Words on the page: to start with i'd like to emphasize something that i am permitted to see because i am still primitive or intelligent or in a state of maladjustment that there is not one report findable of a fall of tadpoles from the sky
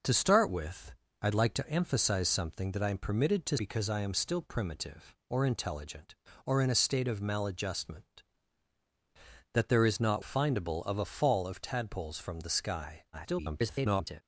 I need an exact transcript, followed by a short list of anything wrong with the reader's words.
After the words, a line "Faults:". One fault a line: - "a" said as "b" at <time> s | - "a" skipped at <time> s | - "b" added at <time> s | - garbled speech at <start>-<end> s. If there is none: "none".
to start with i'd like to emphasize something that i am permitted to because i am still primitive or intelligent or in a state of maladjustment that there is not findable of a fall of tadpoles from the sky [garbled]
Faults:
- "see" skipped at 3.6 s
- "one report" skipped at 10.2 s
- garbled speech at 13.1-14.2 s